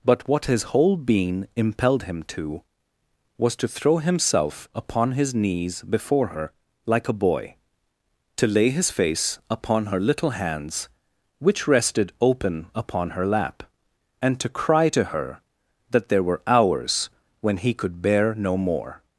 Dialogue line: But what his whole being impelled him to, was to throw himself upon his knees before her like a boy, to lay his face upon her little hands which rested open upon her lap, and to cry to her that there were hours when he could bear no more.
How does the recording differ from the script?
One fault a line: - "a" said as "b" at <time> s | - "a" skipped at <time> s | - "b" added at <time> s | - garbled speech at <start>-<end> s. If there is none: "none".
none